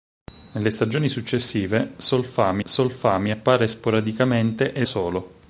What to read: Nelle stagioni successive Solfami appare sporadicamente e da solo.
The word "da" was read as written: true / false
false